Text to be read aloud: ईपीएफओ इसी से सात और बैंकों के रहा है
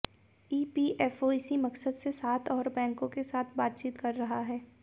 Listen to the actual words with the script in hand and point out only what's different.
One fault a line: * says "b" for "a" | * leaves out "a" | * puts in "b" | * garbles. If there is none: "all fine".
* puts in "मकसद"
* puts in "साथ बातचीत कर"